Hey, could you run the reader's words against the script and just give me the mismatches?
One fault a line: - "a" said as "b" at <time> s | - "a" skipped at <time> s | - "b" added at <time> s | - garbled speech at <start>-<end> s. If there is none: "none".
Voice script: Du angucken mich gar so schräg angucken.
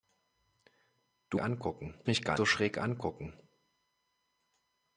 none